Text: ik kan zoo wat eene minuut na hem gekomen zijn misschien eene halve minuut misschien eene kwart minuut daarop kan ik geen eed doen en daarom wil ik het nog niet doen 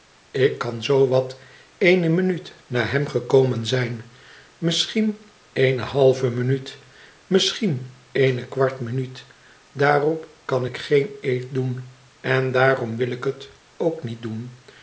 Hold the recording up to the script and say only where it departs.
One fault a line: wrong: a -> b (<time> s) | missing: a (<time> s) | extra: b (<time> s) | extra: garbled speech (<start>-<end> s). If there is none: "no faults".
wrong: nog -> ook (13.8 s)